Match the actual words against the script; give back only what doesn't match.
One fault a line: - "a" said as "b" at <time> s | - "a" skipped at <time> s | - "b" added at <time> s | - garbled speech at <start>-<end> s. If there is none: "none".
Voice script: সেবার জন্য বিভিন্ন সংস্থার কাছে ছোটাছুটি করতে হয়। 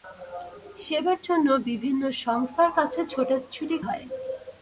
- "করতে" skipped at 3.8 s